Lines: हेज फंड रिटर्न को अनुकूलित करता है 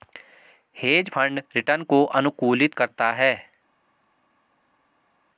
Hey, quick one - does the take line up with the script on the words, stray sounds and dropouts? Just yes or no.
yes